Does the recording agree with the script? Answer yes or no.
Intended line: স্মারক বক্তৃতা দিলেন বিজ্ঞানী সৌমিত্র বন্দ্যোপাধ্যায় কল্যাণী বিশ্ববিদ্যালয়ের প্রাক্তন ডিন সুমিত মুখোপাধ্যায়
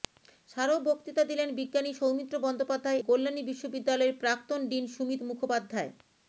yes